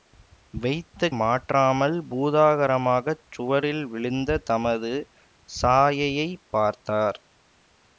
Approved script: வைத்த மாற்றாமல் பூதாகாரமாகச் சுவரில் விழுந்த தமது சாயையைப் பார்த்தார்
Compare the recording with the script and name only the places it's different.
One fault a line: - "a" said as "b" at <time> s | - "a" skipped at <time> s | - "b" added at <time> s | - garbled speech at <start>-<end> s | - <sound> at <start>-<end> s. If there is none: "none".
none